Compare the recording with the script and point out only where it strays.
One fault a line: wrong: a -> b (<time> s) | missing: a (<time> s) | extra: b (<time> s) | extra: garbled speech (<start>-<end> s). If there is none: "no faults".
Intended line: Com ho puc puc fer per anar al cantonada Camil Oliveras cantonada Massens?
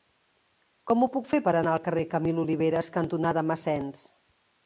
missing: puc (1.3 s)
wrong: cantonada -> carrer (1.9 s)